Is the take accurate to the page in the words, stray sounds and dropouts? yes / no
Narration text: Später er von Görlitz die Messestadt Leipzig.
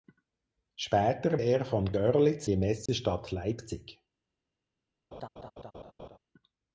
no